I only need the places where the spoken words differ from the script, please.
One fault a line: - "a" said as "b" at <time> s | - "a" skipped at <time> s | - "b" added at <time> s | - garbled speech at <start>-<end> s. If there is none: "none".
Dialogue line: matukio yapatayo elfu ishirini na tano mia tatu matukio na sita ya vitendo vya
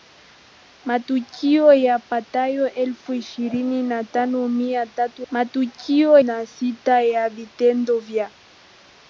none